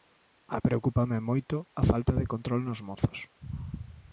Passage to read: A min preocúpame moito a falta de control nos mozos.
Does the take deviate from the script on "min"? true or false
true